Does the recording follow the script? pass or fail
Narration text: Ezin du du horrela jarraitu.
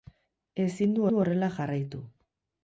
pass